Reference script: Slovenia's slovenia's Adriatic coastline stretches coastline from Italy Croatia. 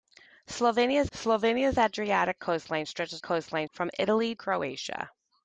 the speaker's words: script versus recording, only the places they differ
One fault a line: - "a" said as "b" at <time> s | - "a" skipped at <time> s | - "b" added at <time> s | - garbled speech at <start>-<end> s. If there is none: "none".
none